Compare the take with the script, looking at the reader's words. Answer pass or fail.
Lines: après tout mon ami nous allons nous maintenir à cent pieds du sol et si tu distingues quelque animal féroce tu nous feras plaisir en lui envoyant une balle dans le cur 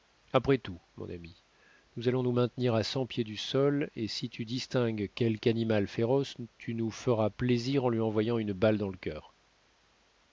pass